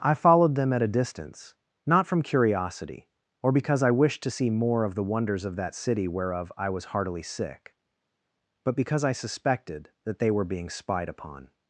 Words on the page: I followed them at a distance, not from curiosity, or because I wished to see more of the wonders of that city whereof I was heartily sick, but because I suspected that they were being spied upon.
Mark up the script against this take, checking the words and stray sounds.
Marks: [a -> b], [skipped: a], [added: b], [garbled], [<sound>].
I followed them at a distance, not from curiosity, or because I wished to see more of the wonders of that city whereof I was heartily sick, but because I suspected that they were being spied upon.